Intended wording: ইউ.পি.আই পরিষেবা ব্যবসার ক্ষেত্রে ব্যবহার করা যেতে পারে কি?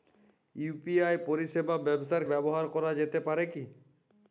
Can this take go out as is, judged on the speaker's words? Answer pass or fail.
fail